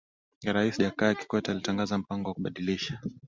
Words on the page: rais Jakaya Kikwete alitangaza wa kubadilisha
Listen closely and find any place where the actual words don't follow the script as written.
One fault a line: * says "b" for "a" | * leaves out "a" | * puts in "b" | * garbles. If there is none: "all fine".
* puts in "mpango"